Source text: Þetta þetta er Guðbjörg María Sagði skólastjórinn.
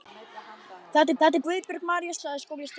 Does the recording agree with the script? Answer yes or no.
yes